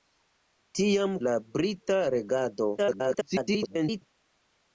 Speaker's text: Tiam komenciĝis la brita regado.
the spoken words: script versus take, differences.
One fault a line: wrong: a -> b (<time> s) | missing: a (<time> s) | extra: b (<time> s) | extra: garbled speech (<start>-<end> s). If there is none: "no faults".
missing: komenciĝis (1.1 s)
extra: garbled speech (2.8-4.0 s)